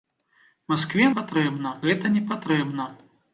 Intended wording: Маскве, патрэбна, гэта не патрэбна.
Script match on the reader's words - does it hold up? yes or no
yes